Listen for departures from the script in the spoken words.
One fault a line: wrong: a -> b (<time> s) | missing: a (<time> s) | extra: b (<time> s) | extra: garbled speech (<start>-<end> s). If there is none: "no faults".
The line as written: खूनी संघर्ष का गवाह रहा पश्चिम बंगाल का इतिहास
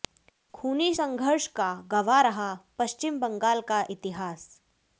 no faults